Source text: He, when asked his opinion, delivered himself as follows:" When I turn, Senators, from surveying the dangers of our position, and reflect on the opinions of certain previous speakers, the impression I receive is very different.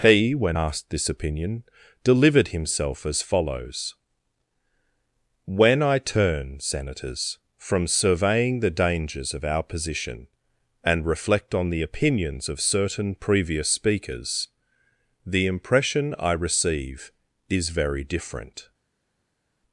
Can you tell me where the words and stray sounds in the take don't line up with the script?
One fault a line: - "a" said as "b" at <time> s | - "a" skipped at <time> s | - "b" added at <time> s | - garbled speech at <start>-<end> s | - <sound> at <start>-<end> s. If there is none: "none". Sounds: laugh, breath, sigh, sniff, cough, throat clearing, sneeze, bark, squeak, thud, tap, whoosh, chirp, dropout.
- "his" said as "this" at 0.9 s